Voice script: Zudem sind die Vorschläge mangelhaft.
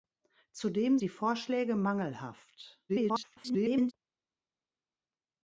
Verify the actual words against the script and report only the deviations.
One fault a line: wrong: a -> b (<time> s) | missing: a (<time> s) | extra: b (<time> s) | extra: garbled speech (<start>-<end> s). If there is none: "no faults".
missing: sind (1.0 s)
extra: garbled speech (2.9-3.9 s)